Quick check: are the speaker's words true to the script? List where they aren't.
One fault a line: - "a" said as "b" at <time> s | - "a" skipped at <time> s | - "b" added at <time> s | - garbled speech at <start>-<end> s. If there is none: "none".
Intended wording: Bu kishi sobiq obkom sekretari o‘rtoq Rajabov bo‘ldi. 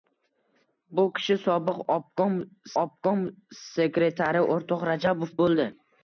- "obkom" added at 2.8 s